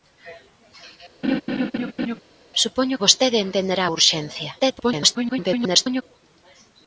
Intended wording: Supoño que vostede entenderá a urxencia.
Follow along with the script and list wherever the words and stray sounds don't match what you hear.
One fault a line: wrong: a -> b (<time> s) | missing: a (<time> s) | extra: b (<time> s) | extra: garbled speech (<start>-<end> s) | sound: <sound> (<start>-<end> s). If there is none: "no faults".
sound: laugh (1.2-2.2 s)
missing: que (3.0 s)
extra: garbled speech (4.6-6.0 s)